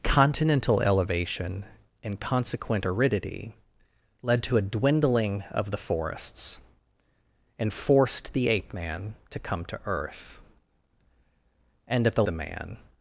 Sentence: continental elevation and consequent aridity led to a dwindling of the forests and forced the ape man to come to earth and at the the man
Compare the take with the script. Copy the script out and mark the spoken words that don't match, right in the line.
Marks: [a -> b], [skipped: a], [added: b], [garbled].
continental elevation and consequent aridity led to a dwindling of the forests and forced the ape man to come to earth and at the the man